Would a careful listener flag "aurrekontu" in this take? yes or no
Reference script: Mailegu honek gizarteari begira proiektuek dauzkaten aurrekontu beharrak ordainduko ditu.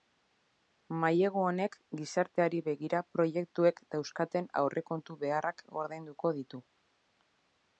no